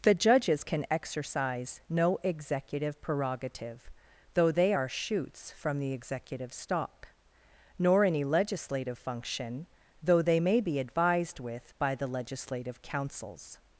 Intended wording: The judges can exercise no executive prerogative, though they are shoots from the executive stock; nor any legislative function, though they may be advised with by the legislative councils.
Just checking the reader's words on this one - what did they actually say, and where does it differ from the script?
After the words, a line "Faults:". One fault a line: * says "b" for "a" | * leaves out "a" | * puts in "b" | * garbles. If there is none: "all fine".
The judges can exercise no executive prerogative, though they are shoots from the executive stock; nor any legislative function, though they may be advised with by the legislative councils.
Faults:
all fine